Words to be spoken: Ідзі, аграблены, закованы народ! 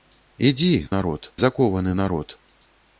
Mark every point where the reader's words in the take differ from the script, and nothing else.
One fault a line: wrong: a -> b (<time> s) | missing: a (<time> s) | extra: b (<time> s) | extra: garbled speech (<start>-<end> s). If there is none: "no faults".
wrong: аграблены -> народ (1.0 s)